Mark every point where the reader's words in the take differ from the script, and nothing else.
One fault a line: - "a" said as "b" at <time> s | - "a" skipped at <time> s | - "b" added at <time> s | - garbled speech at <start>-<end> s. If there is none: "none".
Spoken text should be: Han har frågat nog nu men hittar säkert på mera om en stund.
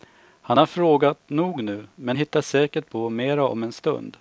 none